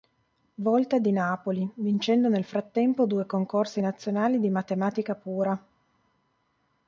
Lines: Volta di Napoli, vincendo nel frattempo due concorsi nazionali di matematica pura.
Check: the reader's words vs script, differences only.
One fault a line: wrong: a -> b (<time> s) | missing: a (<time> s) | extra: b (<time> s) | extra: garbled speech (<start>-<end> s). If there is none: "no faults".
no faults